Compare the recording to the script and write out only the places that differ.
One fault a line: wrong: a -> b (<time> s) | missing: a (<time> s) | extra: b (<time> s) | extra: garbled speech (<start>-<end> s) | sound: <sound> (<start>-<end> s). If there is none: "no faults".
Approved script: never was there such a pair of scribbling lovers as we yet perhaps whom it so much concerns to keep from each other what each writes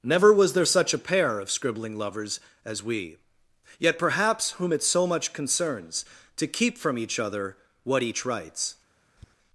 sound: tap (9.2-9.3 s)